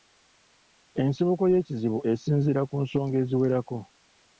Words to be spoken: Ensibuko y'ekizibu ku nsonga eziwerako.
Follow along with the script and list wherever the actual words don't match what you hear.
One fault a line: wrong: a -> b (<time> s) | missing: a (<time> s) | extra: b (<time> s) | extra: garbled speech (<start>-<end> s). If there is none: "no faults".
extra: esinziira (2.1 s)